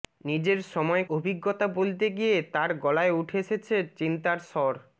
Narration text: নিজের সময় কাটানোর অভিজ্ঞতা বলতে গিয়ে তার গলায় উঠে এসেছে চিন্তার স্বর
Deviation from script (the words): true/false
true